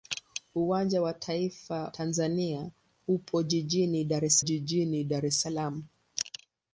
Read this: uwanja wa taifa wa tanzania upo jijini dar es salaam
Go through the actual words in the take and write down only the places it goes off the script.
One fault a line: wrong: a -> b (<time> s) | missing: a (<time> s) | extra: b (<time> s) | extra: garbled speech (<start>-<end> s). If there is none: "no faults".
missing: wa (1.9 s)
extra: jijini dar es (4.4 s)